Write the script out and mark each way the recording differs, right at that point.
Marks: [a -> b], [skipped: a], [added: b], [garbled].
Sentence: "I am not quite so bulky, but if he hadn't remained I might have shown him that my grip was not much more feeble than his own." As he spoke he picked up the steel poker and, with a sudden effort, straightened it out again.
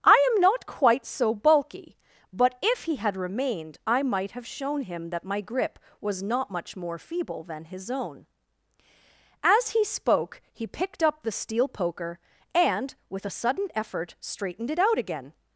"I am not quite so bulky, but if he [hadn't -> had] remained I might have shown him that my grip was not much more feeble than his own." As he spoke he picked up the steel poker and, with a sudden effort, straightened it out again.